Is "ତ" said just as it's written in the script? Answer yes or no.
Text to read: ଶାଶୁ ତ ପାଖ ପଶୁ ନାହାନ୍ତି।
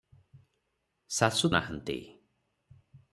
no